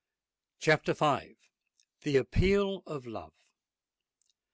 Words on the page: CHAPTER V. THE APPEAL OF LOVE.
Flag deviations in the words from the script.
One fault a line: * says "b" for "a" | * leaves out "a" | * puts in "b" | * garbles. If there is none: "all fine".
all fine